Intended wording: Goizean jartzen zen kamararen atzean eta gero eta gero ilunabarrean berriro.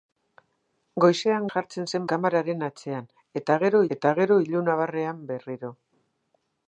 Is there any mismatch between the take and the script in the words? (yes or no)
no